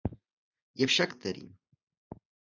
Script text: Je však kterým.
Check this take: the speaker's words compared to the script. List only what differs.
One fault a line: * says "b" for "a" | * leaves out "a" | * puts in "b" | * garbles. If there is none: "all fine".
all fine